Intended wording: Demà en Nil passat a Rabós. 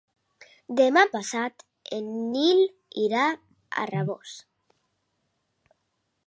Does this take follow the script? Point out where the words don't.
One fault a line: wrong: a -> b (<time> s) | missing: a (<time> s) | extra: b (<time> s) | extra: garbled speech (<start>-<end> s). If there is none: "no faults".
extra: passat (1.2 s)
wrong: passat -> irà (3.1 s)